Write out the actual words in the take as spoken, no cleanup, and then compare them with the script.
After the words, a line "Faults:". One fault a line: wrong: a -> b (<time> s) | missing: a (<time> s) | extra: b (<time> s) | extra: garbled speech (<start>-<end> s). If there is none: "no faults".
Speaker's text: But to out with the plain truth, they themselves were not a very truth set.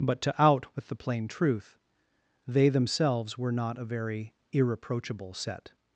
But to out with the plain truth, they themselves were not a very irreproachable set.
Faults:
wrong: truth -> irreproachable (4.5 s)